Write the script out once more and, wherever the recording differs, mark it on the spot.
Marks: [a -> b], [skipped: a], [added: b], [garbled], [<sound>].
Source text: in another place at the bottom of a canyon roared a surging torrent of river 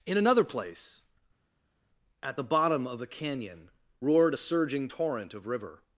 in another place at the bottom of a canyon roared a surging torrent of river